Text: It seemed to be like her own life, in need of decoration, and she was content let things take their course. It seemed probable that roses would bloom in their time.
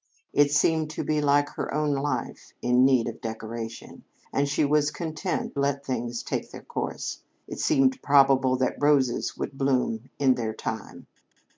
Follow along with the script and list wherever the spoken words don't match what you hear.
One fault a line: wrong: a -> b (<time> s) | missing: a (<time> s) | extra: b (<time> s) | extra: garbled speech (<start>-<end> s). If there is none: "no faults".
no faults